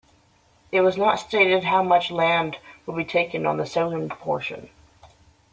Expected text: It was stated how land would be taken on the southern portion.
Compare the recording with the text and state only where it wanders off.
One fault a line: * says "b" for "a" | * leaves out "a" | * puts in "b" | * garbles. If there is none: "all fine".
* puts in "not"
* puts in "much"